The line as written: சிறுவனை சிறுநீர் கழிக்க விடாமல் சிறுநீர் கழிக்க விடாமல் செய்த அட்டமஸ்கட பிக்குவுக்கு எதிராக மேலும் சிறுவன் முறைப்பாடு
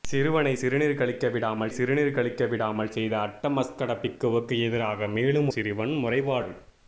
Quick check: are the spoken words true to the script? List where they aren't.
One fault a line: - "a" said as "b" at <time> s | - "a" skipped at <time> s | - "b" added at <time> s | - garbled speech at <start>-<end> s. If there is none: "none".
none